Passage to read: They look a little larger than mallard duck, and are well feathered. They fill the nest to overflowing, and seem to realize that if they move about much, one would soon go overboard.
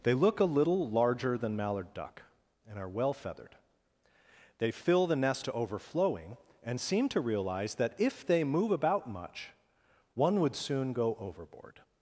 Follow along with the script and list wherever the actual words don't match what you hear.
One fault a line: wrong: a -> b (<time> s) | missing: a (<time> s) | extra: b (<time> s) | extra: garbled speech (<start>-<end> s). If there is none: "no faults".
no faults